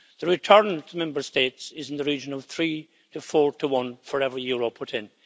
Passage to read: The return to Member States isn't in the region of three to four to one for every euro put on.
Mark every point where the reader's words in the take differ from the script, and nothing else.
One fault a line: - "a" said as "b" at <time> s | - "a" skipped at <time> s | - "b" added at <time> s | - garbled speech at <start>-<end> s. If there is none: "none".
- "isn't" said as "is" at 1.8 s
- "on" said as "in" at 4.9 s